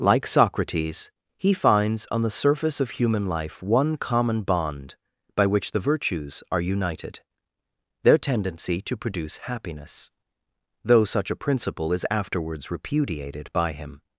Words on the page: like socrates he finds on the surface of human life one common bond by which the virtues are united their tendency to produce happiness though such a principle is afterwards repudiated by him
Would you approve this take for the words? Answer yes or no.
yes